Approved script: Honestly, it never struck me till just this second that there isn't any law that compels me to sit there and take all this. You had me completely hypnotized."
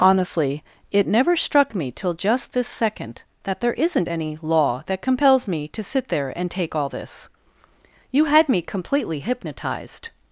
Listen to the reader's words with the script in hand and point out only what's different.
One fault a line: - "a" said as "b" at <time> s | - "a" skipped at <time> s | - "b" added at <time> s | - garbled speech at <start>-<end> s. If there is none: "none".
none